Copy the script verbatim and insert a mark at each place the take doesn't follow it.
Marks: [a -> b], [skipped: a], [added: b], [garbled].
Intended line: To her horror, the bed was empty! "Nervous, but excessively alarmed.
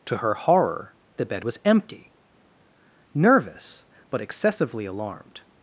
To her horror, the bed was empty! "Nervous, but excessively alarmed.